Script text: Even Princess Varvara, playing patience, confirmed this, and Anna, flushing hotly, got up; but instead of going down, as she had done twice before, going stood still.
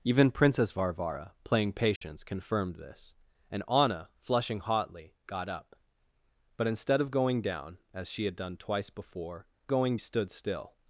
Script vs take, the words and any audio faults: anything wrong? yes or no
yes